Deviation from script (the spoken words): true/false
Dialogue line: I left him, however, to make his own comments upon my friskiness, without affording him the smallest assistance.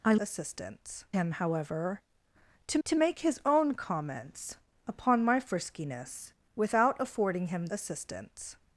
true